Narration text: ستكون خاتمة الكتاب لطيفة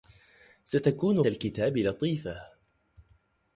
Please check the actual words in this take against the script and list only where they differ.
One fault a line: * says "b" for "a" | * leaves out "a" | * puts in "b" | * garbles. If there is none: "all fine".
* leaves out "خاتمة"